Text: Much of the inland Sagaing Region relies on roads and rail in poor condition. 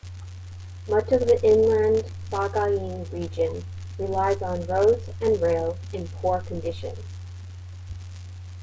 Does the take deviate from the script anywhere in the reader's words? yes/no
no